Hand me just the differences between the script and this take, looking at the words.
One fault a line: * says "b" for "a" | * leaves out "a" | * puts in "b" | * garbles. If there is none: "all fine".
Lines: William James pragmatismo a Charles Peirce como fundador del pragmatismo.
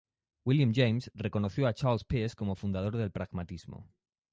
* says "reconoció" for "pragmatismo"